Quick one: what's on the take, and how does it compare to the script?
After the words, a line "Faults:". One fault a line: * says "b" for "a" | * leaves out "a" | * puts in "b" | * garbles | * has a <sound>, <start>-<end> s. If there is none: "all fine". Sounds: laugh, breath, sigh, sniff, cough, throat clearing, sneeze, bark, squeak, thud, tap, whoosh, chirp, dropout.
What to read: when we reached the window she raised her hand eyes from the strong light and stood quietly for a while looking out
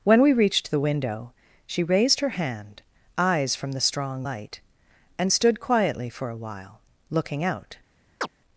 when we reached the window she raised her hand eyes from the strong light and stood quietly for a while looking out
Faults:
* has a chirp, 8.2-8.3 s